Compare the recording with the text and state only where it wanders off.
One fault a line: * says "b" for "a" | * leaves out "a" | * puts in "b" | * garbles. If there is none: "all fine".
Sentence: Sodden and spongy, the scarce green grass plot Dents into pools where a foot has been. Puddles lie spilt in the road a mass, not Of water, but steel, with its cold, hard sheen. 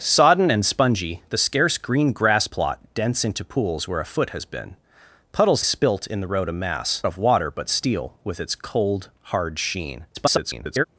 * leaves out "lie"
* leaves out "not"
* garbles